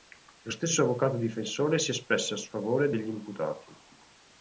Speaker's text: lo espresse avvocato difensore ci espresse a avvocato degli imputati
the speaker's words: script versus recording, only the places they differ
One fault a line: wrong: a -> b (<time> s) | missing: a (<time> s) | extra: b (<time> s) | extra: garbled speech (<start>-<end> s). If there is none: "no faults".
wrong: espresse -> stesso (0.5 s)
wrong: ci -> si (1.7 s)
wrong: avvocato -> sfavore (2.4 s)